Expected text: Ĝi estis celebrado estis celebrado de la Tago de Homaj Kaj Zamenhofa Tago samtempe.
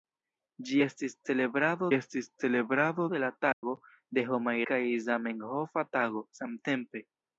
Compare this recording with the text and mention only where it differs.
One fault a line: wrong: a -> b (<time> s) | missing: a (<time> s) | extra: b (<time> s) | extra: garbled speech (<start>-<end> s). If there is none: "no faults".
no faults